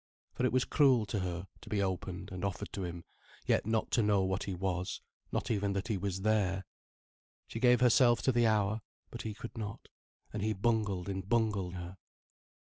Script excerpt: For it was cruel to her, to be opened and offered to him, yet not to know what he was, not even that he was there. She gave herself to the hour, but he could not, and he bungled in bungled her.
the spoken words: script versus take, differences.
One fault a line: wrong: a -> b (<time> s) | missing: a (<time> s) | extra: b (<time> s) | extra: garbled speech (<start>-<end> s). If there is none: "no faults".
no faults